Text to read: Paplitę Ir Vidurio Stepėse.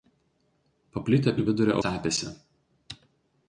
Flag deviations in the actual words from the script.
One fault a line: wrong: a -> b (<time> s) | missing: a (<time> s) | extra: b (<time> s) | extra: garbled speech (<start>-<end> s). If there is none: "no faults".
no faults